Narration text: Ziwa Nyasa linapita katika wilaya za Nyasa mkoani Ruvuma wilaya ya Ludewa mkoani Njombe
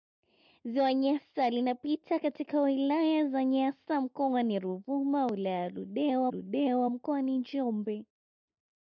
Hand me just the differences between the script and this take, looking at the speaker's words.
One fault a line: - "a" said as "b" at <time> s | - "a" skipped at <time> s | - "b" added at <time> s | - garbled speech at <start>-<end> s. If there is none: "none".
- "Ludewa" added at 6.3 s